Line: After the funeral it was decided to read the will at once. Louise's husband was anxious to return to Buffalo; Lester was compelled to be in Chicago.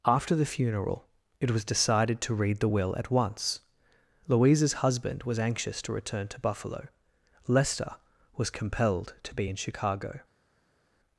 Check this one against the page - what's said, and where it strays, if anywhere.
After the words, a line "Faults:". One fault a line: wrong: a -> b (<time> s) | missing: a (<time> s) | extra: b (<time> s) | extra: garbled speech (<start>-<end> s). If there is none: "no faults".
After the funeral it was decided to read the will at once. Louise's husband was anxious to return to Buffalo; Lester was compelled to be in Chicago.
Faults:
no faults